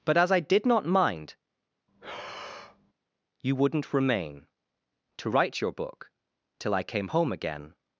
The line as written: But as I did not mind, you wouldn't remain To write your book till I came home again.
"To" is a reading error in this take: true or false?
false